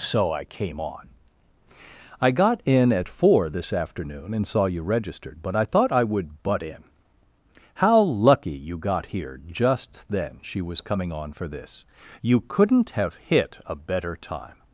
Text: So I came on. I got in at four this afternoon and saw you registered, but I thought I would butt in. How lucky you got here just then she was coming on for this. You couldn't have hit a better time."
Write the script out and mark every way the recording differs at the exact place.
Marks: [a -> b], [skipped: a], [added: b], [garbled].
So I came on. I got in at four this afternoon and saw you registered, but I thought I would butt in. How lucky you got here just then she was coming on for this. You couldn't have hit a better time."